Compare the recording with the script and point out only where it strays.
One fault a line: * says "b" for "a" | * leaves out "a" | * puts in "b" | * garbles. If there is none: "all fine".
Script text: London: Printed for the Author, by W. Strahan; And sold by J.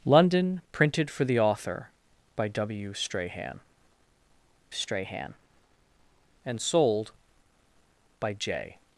* puts in "strahan"